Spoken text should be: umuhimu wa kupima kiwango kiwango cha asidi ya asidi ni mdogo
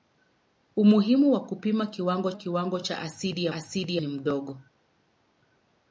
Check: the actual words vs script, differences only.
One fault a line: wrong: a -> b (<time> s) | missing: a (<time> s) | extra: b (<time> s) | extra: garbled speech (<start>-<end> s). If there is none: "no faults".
no faults